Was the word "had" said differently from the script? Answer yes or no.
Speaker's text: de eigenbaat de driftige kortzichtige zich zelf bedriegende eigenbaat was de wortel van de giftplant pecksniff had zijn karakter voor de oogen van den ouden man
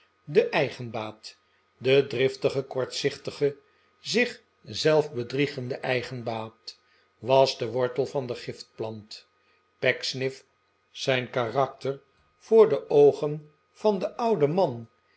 yes